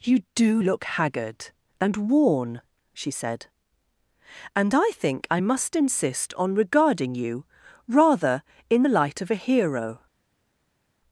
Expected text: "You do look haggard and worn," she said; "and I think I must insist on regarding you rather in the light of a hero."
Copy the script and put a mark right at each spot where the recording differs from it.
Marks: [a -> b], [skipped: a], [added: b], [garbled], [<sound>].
"You do look haggard and worn," she said; "and I think I must insist on regarding you rather in the light of a hero."